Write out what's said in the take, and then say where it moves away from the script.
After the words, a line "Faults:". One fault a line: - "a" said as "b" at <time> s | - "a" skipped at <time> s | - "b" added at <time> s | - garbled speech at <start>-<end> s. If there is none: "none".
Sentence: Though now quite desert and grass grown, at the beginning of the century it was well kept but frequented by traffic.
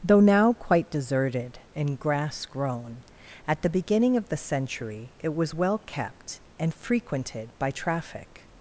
Though now quite deserted and grass grown, at the beginning of the century it was well kept and frequented by traffic.
Faults:
- "desert" said as "deserted" at 0.9 s
- "but" said as "and" at 6.6 s